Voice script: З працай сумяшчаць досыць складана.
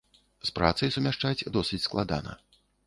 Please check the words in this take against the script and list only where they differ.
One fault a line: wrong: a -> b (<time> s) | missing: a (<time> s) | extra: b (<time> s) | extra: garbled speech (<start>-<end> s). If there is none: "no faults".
no faults